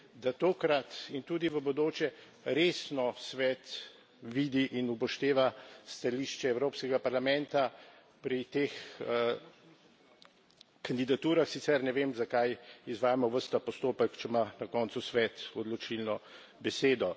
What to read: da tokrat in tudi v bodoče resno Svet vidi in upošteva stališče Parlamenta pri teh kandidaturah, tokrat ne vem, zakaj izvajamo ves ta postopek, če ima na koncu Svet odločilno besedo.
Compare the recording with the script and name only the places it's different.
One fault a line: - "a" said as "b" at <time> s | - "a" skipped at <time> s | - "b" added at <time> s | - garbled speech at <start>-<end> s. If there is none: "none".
- "Evropskega" added at 6.5 s
- "tokrat" said as "sicer" at 11.5 s